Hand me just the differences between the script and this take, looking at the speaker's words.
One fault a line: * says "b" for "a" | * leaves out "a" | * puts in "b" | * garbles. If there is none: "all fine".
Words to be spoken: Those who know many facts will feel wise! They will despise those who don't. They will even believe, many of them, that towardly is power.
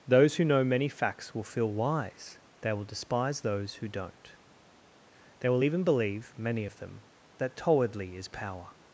all fine